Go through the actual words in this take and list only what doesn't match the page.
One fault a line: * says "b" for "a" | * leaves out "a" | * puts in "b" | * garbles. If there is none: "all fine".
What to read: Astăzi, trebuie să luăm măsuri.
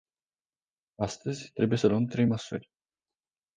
* puts in "trei"